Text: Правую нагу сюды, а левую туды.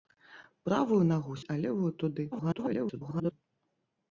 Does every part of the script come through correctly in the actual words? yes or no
no